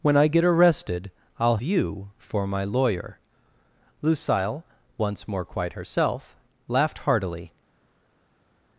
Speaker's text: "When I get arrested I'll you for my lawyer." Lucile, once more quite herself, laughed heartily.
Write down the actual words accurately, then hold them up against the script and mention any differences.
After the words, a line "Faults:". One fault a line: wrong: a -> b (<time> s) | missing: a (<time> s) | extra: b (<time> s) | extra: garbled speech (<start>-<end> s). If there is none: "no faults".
"When I get arrested I'll you for my lawyer." Lucile, once more quite herself, laughed heartily.
Faults:
no faults